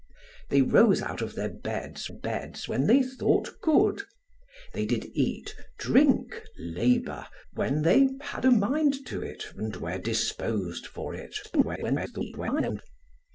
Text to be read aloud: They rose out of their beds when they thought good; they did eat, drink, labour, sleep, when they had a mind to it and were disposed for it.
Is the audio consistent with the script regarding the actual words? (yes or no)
no